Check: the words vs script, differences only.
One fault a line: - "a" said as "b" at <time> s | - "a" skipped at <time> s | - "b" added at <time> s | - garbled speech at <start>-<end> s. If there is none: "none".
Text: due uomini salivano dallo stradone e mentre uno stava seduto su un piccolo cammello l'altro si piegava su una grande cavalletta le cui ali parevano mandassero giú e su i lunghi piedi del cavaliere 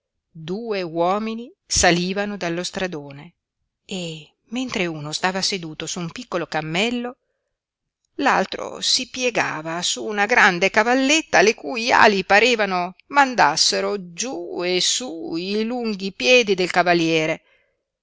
none